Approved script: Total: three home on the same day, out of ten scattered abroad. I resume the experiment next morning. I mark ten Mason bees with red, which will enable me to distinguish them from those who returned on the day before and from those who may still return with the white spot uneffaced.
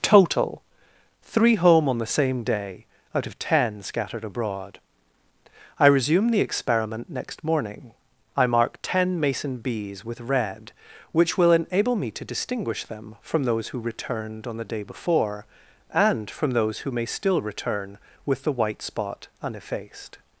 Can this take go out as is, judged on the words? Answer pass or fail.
pass